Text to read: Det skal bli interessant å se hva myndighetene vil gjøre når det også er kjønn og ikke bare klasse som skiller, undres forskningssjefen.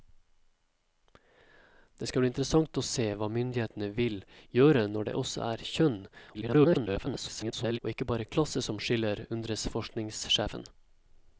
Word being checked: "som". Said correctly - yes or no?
yes